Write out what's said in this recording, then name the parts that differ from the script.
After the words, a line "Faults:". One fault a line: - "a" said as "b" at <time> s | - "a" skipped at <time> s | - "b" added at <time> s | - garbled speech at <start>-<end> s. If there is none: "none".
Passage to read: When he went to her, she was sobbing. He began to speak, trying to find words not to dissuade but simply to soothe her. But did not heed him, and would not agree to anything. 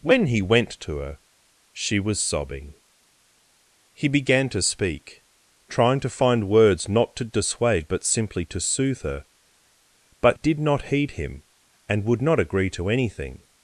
When he went to her, she was sobbing. He began to speak, trying to find words not to dissuade but simply to soothe her. But did not heed him, and would not agree to anything.
Faults:
none